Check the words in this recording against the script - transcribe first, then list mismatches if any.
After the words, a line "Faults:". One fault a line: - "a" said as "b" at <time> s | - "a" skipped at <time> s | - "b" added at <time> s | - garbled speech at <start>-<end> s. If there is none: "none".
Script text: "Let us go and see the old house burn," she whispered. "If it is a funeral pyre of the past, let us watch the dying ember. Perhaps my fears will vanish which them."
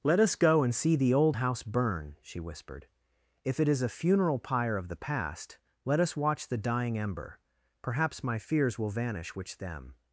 "Let us go and see the old house burn," she whispered. "If it is a funeral pyre of the past, let us watch the dying ember. Perhaps my fears will vanish which them."
Faults:
none